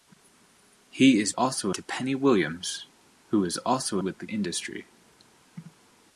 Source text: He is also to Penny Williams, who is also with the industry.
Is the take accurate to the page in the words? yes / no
yes